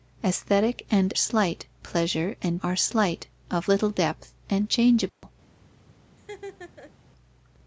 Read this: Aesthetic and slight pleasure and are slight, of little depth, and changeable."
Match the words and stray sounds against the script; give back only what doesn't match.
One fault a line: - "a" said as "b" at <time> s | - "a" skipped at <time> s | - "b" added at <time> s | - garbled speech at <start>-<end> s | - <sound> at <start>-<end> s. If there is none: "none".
- dropout at 5.1-5.2 s
- laugh at 6.2-6.9 s